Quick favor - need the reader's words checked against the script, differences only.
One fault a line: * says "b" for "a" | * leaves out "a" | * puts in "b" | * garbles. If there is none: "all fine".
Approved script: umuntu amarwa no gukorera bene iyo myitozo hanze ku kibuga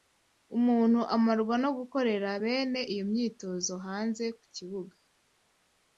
all fine